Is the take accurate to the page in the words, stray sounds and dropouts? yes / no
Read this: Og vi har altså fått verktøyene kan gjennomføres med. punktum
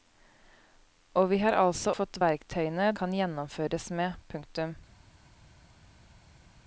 yes